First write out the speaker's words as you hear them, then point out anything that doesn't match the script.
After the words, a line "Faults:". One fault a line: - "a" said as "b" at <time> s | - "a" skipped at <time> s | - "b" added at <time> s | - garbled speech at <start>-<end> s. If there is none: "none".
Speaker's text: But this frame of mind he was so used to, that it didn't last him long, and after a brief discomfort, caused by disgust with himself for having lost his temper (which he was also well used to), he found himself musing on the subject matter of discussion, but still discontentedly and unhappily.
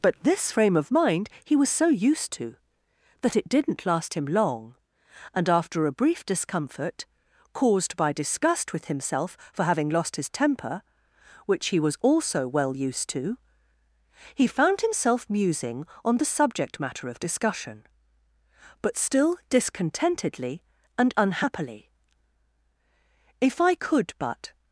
But this frame of mind he was so used to, that it didn't last him long, and after a brief discomfort, caused by disgust with himself for having lost his temper (which he was also well used to), he found himself musing on the subject matter of discussion, but still discontentedly and unhappily. "If I could but
Faults:
- "If I could but" added at 23.4 s